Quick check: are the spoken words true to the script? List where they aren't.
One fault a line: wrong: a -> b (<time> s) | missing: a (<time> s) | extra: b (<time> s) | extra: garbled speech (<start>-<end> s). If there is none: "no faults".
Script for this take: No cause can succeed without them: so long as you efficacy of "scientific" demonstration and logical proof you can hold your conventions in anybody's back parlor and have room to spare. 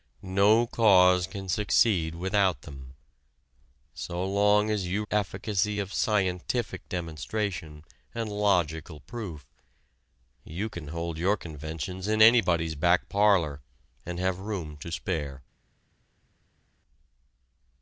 no faults